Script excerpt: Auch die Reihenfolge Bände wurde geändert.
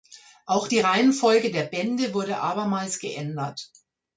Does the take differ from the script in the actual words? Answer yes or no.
yes